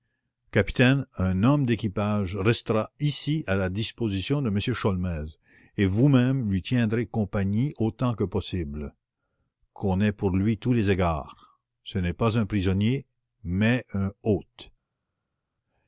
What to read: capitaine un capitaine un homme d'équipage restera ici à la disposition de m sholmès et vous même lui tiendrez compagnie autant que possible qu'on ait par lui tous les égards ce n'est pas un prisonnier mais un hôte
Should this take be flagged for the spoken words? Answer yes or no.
yes